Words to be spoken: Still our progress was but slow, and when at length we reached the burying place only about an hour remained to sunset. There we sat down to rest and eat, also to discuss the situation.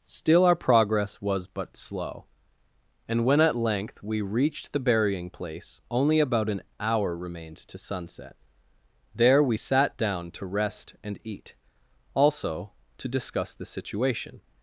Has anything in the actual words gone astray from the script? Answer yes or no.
no